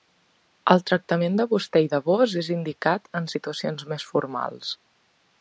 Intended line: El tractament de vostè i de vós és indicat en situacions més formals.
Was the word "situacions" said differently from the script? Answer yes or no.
no